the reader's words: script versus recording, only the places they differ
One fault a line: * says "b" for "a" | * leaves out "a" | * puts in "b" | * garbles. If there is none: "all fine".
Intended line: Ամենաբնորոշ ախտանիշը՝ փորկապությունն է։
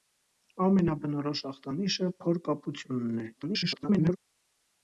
* garbles